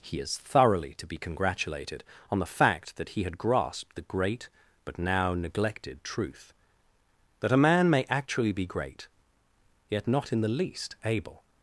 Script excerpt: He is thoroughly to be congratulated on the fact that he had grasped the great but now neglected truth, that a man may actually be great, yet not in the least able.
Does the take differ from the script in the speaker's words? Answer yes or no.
no